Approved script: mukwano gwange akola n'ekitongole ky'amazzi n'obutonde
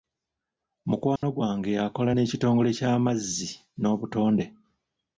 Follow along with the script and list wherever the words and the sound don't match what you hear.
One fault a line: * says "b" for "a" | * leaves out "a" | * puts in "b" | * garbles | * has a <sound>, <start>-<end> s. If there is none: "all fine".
* has a dropout, 1.2-1.2 s